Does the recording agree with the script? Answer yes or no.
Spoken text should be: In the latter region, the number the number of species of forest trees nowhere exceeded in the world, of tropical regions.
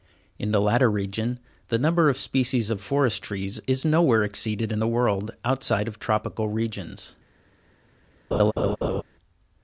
no